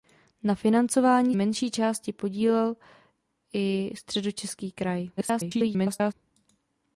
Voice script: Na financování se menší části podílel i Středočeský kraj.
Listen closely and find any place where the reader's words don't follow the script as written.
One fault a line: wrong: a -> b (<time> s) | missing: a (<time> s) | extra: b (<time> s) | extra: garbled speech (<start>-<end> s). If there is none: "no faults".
missing: se (1.4 s)
extra: garbled speech (5.2-6.1 s)